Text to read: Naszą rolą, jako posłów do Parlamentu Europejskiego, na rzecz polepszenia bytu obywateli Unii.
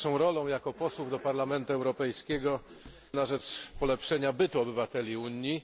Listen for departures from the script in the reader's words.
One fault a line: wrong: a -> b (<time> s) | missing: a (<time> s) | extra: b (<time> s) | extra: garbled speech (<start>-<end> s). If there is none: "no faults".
no faults